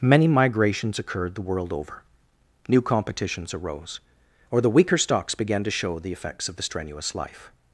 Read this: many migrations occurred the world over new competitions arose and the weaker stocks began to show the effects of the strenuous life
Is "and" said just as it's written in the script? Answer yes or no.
no